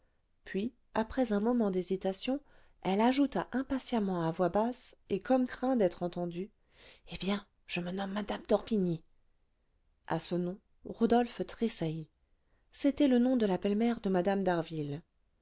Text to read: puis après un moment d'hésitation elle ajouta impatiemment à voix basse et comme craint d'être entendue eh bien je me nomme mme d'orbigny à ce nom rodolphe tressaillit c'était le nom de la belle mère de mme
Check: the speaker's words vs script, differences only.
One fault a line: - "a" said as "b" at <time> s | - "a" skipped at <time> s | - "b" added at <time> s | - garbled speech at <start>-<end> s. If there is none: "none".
none